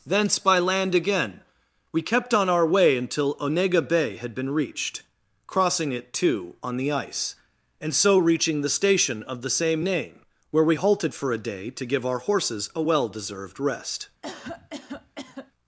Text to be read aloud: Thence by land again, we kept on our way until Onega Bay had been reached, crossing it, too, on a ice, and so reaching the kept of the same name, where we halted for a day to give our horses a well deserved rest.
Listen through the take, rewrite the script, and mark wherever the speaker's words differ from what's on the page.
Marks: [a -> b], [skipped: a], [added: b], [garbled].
Thence by land again, we kept on our way until Onega Bay had been reached, crossing it, too, on [a -> the] ice, and so reaching the [kept -> station] of the same name, where we halted for a day to give our horses a well deserved rest.